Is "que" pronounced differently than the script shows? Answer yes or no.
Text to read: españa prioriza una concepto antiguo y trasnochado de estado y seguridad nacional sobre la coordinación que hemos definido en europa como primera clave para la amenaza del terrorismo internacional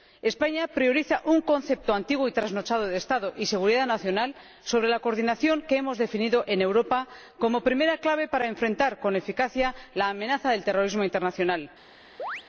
no